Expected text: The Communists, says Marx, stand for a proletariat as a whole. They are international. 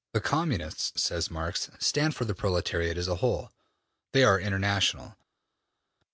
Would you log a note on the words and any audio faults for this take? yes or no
yes